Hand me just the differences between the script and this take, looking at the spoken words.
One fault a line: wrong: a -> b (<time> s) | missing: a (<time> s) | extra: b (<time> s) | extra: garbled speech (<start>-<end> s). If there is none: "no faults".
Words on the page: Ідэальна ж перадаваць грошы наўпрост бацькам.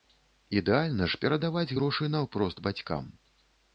no faults